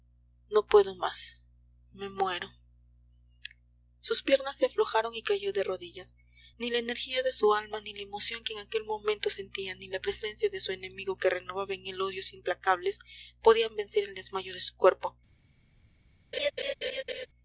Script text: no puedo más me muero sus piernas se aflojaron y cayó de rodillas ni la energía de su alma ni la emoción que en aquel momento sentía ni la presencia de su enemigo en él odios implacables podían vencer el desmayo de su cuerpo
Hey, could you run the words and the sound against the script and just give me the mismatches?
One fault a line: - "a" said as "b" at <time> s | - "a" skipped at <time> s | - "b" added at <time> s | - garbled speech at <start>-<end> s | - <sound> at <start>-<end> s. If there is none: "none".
- "que renovaba" added at 11.2 s
- laugh at 16.3-17.3 s